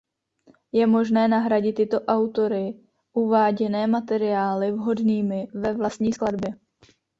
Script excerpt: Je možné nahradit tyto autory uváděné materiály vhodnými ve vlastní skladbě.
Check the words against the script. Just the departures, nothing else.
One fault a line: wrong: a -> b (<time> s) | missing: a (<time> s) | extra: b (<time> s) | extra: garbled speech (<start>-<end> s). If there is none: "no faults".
no faults